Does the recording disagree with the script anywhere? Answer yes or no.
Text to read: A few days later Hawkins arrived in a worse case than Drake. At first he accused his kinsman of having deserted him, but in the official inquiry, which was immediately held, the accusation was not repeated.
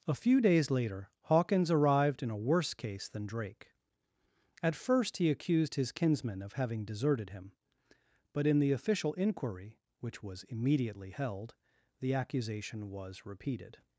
yes